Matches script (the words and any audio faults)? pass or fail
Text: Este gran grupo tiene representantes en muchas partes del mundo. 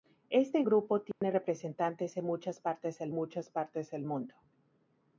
fail